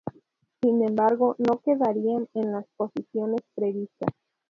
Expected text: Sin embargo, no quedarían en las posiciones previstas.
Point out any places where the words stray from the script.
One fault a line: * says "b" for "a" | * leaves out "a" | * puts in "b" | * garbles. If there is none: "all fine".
all fine